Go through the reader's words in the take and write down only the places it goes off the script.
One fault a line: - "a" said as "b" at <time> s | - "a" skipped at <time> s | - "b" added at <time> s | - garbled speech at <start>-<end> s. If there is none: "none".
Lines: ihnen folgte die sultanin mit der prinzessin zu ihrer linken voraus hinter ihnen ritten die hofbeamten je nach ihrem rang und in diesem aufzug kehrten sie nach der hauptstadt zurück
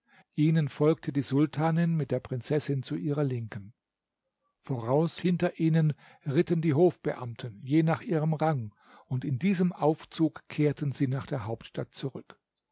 none